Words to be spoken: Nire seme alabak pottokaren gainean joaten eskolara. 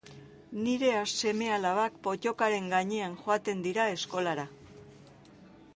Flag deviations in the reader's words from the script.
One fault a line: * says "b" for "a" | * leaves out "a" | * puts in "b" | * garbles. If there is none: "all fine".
* puts in "dira"